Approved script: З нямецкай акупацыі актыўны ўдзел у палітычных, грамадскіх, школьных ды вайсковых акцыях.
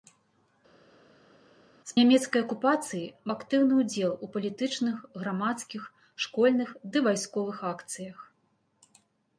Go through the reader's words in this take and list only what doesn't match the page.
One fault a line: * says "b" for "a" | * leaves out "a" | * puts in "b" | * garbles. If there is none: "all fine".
all fine